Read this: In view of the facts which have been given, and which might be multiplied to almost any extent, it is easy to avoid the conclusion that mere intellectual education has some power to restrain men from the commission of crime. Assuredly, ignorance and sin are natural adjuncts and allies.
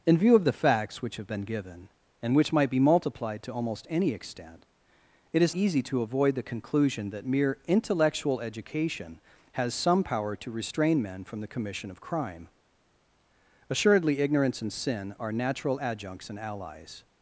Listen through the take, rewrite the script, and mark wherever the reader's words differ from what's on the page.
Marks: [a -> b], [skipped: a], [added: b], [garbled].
In view of the facts which have been given, and which might be multiplied to almost any extent, it is easy to avoid the conclusion that mere intellectual education has some power to restrain men from the commission of crime. Assuredly, ignorance and sin are natural adjuncts and allies.